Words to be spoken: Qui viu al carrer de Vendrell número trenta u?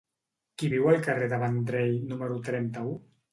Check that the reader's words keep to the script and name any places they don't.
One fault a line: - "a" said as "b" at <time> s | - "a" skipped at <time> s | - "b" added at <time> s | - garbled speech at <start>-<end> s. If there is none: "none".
none